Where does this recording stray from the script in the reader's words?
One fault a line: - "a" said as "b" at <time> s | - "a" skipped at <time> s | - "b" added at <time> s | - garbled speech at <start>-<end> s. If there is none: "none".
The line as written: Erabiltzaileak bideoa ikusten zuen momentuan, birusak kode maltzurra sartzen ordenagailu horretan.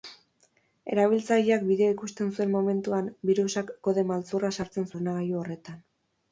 none